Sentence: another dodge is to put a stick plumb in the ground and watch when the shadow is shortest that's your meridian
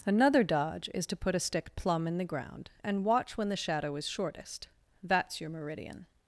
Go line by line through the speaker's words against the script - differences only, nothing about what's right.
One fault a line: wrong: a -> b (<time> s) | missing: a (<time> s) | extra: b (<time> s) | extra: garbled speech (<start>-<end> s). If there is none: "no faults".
no faults